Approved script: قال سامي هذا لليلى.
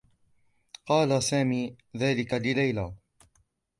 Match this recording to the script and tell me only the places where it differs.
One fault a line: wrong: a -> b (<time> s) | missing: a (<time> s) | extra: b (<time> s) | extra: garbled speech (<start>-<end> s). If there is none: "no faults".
wrong: هذا -> ذلك (2.0 s)